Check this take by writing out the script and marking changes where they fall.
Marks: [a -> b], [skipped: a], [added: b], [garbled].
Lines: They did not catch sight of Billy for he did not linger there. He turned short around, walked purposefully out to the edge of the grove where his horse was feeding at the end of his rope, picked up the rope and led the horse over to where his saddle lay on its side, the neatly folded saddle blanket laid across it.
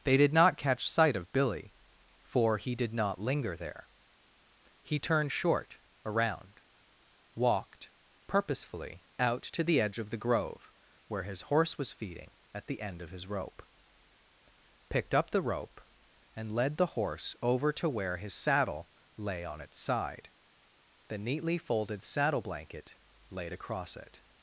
They did not catch sight of Billy for he did not linger there. He turned short around, walked purposefully out to the edge of the grove where his horse was feeding at the end of his rope, picked up the rope and led the horse over to where his saddle lay on its side, the neatly folded saddle blanket laid across it.